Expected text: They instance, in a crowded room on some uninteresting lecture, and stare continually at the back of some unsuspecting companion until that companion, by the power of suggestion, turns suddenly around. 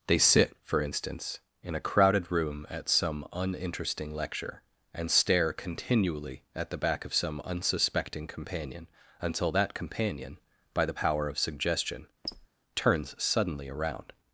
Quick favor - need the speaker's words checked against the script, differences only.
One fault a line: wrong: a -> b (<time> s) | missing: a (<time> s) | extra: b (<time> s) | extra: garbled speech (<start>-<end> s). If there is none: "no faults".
extra: sit for (0.2 s)
wrong: on -> at (2.7 s)